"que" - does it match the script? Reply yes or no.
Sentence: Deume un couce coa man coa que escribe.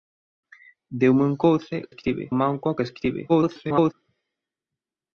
yes